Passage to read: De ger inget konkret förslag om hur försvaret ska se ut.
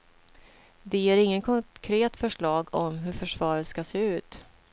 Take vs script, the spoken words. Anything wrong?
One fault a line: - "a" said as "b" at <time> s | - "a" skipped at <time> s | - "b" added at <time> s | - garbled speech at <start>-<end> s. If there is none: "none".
none